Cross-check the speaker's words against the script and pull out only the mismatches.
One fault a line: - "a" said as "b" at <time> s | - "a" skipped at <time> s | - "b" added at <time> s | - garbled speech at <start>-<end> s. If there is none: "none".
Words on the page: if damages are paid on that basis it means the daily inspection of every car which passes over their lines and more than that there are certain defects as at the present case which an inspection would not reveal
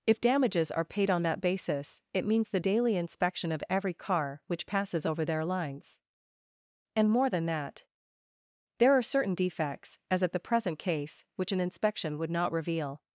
none